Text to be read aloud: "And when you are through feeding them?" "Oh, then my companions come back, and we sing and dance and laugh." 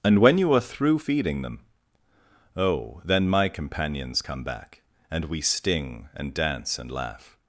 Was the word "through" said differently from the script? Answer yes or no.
no